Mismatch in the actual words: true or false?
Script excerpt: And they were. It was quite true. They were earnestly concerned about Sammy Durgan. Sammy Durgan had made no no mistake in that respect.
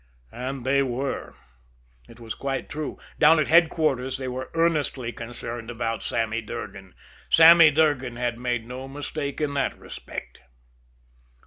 true